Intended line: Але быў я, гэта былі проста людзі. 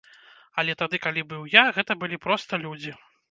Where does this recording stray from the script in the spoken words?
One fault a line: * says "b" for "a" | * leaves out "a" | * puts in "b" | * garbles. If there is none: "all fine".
* puts in "тады калі"